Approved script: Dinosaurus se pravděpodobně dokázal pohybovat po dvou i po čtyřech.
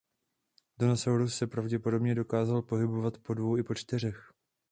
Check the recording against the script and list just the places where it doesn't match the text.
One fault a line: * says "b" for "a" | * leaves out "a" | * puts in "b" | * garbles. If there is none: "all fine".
all fine